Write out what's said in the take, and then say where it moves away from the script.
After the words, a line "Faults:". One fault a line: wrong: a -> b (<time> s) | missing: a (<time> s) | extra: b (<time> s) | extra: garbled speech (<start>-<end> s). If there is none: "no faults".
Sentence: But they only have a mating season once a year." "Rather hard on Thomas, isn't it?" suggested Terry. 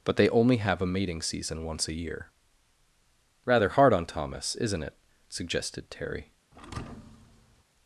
But they only have a mating season once a year." "Rather hard on Thomas, isn't it?" suggested Terry.
Faults:
no faults